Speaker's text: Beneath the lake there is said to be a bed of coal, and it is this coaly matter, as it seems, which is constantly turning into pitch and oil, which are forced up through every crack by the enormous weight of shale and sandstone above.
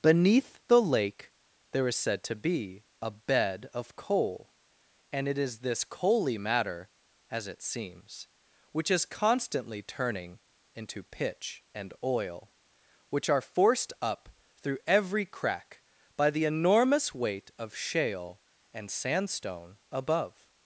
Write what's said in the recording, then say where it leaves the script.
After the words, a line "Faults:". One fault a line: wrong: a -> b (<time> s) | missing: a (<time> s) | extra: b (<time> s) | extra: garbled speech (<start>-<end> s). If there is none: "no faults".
Beneath the lake there is said to be a bed of coal, and it is this coaly matter, as it seems, which is constantly turning into pitch and oil, which are forced up through every crack by the enormous weight of shale and sandstone above.
Faults:
no faults